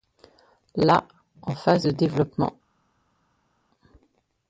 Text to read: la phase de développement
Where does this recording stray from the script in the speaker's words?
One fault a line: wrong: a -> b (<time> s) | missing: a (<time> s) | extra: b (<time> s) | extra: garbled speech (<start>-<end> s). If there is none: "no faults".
extra: en (1.4 s)